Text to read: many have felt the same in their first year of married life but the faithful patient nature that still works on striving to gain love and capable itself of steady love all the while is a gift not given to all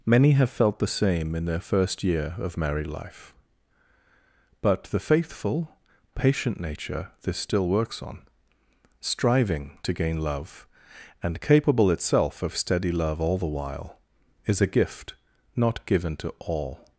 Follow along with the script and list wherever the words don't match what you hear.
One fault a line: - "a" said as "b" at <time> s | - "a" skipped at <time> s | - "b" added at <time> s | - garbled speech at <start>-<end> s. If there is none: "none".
- "that" said as "this" at 7.2 s